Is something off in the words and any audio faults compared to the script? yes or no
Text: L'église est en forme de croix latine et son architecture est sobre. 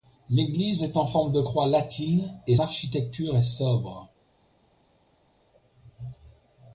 yes